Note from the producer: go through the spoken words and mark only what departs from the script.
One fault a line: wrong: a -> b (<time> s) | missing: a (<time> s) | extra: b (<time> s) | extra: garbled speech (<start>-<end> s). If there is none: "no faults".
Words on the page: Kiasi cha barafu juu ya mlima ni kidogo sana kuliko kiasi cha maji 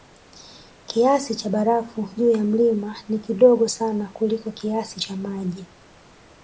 no faults